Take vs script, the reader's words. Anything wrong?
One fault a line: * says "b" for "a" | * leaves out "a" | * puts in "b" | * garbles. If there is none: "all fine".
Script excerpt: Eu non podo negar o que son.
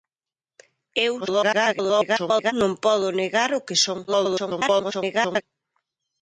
* garbles
* garbles